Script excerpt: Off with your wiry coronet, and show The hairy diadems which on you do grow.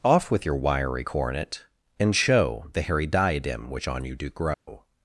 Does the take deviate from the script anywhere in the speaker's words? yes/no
yes